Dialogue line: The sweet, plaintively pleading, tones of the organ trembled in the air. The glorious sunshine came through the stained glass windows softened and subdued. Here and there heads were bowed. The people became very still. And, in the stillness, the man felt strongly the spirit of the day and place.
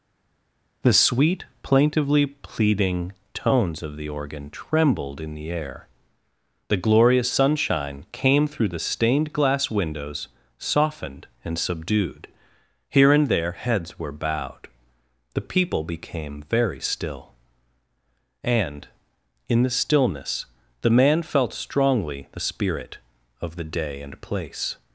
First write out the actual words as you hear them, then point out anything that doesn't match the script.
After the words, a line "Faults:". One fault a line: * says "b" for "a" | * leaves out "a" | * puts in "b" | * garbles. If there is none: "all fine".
The sweet, plaintively pleading, tones of the organ trembled in the air. The glorious sunshine came through the stained glass windows softened and subdued. Here and there heads were bowed. The people became very still. And, in the stillness, the man felt strongly the spirit of the day and place.
Faults:
all fine